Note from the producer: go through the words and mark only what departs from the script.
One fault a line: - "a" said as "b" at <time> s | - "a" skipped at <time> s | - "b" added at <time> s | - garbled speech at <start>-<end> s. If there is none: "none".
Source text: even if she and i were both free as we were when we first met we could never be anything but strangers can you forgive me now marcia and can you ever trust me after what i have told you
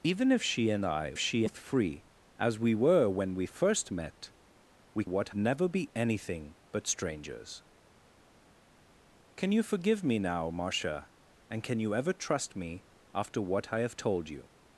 - "were" said as "she" at 1.2 s
- "could" said as "what" at 5.0 s